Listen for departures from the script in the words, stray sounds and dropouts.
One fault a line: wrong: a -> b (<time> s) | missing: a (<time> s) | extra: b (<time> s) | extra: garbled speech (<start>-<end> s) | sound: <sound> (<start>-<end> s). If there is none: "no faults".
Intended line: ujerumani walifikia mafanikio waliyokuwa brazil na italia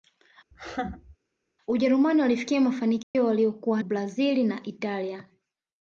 sound: laugh (0.5-1.2 s)
sound: dropout (3.0-3.2 s)